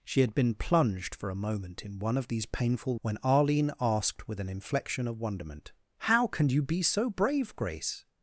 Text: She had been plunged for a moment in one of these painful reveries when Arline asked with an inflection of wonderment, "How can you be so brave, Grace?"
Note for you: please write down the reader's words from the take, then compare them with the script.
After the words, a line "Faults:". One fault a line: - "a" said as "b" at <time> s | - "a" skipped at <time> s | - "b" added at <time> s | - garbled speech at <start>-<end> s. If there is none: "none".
She had been plunged for a moment in one of these painful when Arline asked with an inflection of wonderment, "How can you be so brave, Grace?"
Faults:
- "reveries" skipped at 3.0 s